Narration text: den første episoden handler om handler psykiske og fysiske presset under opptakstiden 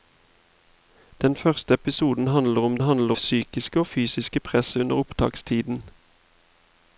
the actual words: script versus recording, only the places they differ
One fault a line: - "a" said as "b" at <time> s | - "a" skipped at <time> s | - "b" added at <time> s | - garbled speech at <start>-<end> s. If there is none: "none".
none